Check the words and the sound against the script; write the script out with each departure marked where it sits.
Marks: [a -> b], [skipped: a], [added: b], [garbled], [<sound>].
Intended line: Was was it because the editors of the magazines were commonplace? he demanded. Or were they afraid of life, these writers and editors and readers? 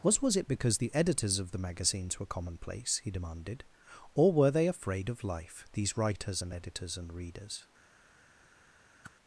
Was was it because the editors of the magazines were commonplace? he demanded. Or were they afraid of life, these writers and editors and readers? [whoosh]